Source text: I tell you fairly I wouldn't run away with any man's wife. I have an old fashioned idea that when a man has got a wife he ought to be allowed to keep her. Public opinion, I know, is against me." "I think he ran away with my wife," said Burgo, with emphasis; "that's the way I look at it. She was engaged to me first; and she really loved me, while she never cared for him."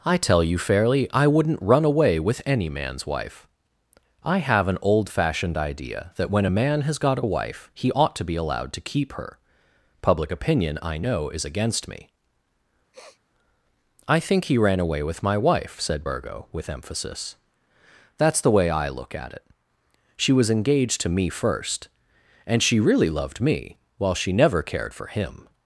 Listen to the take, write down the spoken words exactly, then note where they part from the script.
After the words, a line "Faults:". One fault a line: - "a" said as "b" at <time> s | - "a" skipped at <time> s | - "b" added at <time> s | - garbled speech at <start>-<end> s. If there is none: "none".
I tell you fairly I wouldn't run away with any man's wife. I have an old fashioned idea that when a man has got a wife he ought to be allowed to keep her. Public opinion, I know, is against me." "I think he ran away with my wife," said Burgo, with emphasis; "that's the way I look at it. She was engaged to me first; and she really loved me, while she never cared for him."
Faults:
none